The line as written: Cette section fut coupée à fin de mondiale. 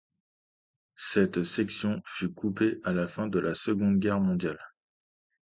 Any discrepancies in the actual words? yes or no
yes